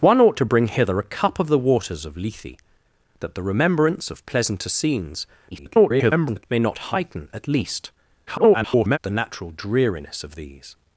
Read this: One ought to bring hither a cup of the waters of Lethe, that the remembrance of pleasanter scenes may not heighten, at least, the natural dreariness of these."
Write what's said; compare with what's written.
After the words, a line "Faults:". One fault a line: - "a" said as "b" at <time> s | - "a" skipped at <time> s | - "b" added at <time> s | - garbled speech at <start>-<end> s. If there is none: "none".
One ought to bring hither a cup of the waters of Lethe, that the remembrance of pleasanter scenes [garbled] may not heighten, at least, [garbled] the natural dreariness of these."
Faults:
- garbled speech at 5.5-6.4 s
- garbled speech at 8.3-9.0 s